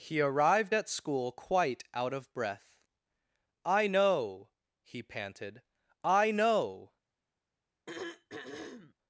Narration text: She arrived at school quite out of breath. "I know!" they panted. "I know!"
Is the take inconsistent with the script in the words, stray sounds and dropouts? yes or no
yes